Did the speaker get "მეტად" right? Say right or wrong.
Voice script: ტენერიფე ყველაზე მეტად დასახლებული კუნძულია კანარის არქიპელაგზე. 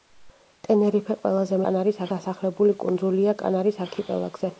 wrong